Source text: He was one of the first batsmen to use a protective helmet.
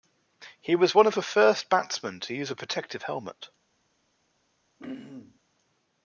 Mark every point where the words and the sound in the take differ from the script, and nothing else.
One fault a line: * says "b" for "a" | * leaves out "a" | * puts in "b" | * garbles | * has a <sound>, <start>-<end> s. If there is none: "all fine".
* has a throat clearing, 4.8-5.4 s